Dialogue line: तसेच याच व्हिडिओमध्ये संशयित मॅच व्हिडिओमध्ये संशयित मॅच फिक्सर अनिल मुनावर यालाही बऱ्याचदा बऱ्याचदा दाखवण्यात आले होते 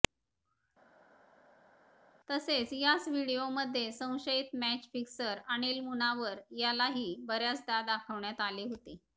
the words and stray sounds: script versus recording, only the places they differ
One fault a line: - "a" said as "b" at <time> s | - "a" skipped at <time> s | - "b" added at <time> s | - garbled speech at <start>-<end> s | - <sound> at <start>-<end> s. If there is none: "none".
- "व्हिडिओमध्ये संशयित मॅच" skipped at 4.9 s
- "बऱ्याचदा" skipped at 7.8 s